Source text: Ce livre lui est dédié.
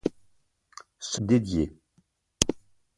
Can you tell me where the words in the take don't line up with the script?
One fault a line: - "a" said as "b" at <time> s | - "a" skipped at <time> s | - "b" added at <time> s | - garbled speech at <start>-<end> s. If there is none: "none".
- "livre lui est" skipped at 1.2 s